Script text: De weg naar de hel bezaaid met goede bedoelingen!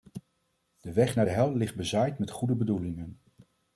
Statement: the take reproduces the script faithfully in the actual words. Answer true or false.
false